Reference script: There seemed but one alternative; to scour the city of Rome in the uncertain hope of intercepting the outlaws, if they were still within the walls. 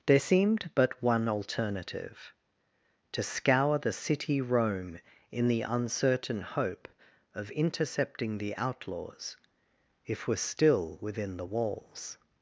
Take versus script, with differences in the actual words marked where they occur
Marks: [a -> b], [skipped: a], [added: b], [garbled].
There seemed but one alternative; to scour the city [skipped: of] Rome in the uncertain hope of intercepting the outlaws, if [skipped: they] were still within the walls.